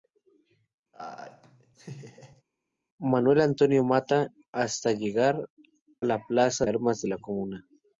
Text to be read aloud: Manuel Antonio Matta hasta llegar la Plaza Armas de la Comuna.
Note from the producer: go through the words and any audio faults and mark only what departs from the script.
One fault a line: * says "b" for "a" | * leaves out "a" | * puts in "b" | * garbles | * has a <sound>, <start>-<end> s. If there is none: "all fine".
* has a laugh, 0.9-2.4 s